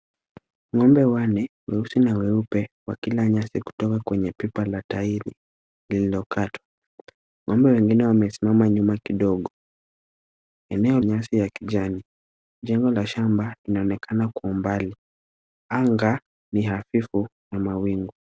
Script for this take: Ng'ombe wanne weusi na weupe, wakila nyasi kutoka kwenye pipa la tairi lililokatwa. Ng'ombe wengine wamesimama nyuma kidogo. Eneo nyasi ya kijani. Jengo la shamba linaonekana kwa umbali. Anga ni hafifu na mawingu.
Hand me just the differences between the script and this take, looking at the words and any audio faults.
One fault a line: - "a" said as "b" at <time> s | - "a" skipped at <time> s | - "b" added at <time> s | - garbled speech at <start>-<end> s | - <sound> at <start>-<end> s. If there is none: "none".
none